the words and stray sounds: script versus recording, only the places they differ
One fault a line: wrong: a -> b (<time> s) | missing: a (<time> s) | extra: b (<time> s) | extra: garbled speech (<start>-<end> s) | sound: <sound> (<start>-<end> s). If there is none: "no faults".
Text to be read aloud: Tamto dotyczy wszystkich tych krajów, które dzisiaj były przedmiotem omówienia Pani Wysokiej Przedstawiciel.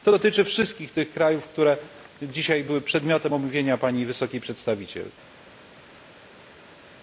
wrong: Tamto -> To (0.0 s)